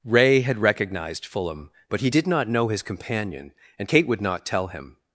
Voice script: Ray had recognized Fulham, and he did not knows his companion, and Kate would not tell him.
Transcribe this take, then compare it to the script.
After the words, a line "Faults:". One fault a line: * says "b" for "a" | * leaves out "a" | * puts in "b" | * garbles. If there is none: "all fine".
Ray had recognized Fulham, but he did not know his companion, and Kate would not tell him.
Faults:
* says "but" for "and"
* says "know" for "knows"